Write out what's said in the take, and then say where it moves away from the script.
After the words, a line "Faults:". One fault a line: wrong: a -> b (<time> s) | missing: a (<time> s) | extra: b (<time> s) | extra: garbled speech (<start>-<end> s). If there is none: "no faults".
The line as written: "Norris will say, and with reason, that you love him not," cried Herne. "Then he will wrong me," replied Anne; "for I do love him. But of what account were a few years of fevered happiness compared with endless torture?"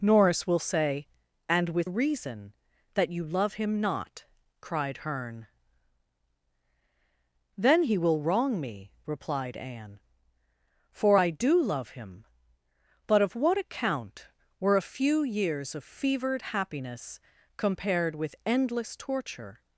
"Norris will say, and with reason, that you love him not," cried Herne. "Then he will wrong me," replied Anne; "for I do love him. But of what account were a few years of fevered happiness compared with endless torture?"
Faults:
no faults